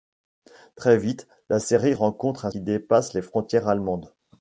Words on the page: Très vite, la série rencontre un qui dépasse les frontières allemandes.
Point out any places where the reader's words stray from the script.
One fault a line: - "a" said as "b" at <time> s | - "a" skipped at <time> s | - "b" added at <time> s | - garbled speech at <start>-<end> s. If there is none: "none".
none